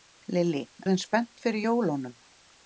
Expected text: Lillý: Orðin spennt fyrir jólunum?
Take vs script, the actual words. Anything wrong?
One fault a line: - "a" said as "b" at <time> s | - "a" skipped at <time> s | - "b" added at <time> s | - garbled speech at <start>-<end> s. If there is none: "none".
none